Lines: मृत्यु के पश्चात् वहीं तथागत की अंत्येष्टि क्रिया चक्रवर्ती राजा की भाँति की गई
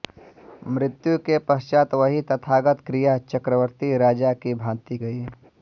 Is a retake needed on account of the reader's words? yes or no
yes